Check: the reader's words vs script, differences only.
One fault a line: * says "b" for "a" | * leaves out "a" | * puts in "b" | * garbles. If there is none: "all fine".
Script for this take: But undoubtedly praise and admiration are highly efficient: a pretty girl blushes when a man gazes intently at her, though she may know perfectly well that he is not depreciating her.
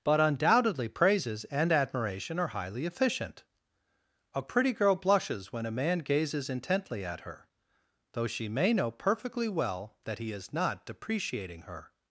* says "praises" for "praise"